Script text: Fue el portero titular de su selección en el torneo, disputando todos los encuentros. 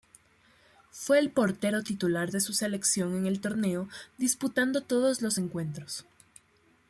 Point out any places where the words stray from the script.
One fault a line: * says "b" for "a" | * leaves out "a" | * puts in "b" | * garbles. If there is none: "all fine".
all fine